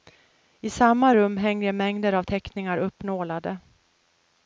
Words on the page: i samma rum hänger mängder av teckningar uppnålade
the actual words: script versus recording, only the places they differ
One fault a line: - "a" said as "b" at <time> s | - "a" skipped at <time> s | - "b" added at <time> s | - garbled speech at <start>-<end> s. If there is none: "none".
none